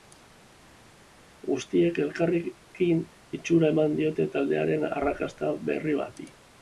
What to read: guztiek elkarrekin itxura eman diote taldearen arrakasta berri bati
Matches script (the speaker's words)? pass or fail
pass